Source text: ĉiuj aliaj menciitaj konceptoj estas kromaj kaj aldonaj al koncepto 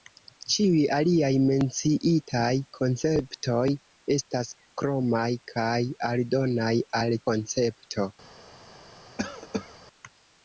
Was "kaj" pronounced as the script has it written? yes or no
yes